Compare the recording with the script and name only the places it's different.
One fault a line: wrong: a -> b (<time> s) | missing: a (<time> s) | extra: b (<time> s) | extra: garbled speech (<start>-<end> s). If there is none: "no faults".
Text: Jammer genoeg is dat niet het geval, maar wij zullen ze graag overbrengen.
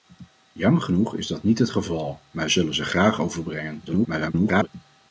missing: wij (2.5 s)
extra: garbled speech (3.9-4.7 s)